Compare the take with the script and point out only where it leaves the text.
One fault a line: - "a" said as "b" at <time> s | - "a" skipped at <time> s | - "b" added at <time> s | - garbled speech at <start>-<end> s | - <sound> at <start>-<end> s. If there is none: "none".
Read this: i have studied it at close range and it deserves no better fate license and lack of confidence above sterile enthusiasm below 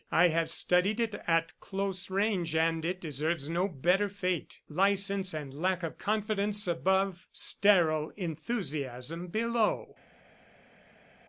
none